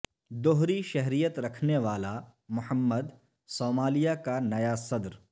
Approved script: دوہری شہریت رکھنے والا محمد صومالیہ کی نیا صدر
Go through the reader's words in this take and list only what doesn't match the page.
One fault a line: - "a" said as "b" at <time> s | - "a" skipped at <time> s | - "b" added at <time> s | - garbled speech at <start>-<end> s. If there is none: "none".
- "کی" said as "کا" at 4.2 s